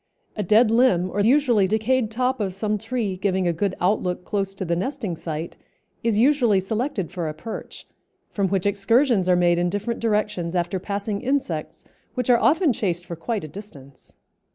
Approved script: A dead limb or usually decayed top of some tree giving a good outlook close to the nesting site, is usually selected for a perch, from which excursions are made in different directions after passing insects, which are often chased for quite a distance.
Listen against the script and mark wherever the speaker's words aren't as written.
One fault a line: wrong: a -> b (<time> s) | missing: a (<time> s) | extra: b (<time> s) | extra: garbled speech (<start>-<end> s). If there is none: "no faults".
no faults